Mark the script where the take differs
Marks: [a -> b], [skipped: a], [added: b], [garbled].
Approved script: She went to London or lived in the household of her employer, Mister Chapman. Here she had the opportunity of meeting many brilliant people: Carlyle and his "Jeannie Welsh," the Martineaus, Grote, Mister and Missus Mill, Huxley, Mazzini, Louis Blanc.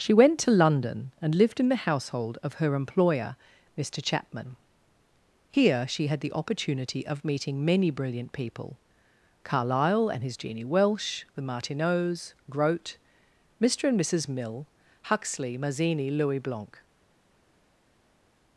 She went to London [or -> and] lived in the household of her employer, Mister Chapman. Here she had the opportunity of meeting many brilliant people: Carlyle and his "Jeannie Welsh," the Martineaus, Grote, Mister and Missus Mill, Huxley, Mazzini, Louis Blanc.